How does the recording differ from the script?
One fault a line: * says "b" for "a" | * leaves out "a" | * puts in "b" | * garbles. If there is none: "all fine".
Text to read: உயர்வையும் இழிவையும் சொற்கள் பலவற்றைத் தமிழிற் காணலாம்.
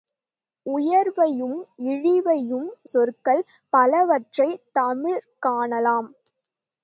all fine